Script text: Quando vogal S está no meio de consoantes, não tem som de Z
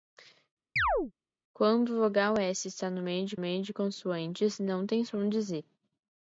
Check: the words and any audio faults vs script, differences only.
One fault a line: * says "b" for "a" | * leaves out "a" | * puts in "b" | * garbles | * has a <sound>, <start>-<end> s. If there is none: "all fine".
* has a chirp, 0.8-1.1 s
* puts in "meio de"